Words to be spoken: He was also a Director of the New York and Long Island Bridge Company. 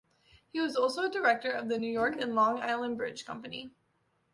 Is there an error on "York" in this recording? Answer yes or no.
no